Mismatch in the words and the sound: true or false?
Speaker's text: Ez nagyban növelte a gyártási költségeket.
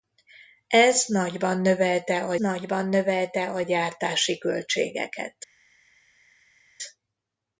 true